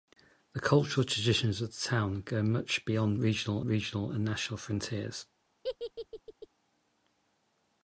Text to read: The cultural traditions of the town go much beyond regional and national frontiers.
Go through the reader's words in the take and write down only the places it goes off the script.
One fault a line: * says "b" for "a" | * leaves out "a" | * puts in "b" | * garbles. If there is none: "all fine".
* puts in "regional"